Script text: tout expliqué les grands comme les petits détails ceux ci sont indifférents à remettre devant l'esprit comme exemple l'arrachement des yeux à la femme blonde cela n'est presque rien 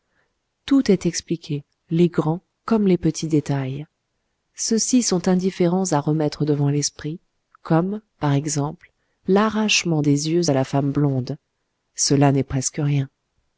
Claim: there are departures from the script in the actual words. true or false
true